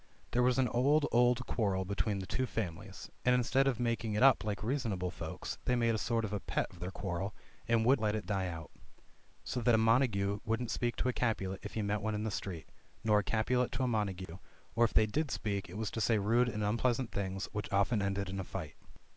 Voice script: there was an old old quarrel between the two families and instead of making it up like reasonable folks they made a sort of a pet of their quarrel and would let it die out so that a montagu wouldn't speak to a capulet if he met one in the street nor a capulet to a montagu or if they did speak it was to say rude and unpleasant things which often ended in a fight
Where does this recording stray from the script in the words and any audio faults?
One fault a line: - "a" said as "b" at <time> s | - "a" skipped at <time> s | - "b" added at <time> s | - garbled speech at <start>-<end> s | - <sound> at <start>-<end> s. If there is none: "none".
- dropout at 14.3-14.3 s